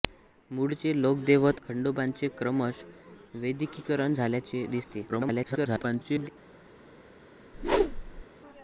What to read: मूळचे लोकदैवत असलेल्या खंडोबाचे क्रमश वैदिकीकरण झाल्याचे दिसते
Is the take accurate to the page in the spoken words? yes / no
no